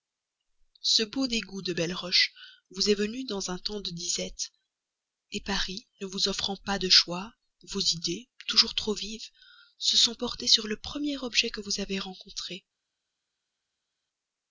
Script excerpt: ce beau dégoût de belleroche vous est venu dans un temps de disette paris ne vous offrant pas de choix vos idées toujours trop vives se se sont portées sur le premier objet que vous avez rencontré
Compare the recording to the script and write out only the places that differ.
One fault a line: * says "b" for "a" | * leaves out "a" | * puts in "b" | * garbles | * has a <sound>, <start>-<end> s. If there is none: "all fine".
* leaves out "se"